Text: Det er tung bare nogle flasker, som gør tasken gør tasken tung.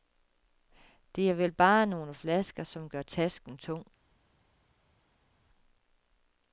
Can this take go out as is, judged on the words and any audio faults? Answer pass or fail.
fail